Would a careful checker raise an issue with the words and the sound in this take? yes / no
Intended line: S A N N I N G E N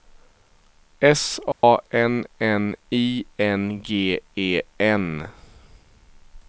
yes